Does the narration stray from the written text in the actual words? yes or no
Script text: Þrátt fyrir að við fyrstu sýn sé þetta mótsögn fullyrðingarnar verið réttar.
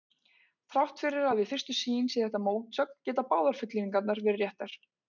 yes